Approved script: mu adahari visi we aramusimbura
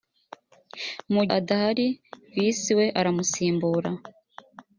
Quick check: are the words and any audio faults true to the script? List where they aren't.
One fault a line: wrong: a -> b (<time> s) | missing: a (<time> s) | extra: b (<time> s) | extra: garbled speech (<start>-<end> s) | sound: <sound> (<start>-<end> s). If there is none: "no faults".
no faults